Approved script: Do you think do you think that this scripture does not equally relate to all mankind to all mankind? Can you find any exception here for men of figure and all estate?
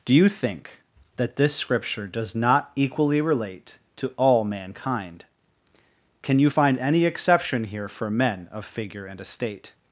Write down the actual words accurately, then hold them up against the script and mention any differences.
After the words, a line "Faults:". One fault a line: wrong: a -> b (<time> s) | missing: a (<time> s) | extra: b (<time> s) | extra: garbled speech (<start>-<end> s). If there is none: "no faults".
Do you think that this scripture does not equally relate to all mankind? Can you find any exception here for men of figure and estate?
Faults:
missing: do you think (0.8 s)
missing: to all mankind (5.2 s)
missing: all (9.2 s)